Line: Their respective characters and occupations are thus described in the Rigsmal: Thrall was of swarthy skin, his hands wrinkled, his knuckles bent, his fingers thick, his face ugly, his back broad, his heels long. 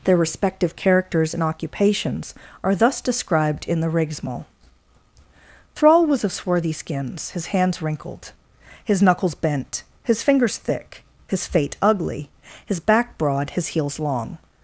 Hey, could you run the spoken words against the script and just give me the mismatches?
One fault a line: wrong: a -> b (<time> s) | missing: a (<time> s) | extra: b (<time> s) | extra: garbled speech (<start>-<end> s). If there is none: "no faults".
wrong: skin -> skins (6.7 s)
wrong: face -> fate (11.5 s)